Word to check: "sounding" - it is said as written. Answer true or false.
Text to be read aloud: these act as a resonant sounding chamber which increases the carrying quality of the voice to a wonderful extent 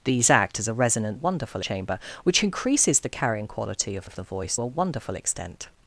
false